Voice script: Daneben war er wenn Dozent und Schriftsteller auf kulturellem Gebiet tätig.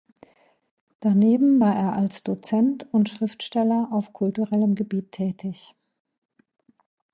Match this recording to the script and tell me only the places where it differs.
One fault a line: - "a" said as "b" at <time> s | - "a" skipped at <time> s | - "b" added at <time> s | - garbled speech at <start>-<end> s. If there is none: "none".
- "wenn" said as "als" at 1.9 s